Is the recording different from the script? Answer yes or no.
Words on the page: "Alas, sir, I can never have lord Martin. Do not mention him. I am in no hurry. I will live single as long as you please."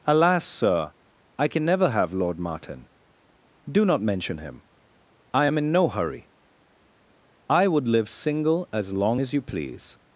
yes